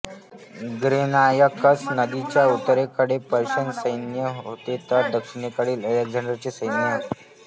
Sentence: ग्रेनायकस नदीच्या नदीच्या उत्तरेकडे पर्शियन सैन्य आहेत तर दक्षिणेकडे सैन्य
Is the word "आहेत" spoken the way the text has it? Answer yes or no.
no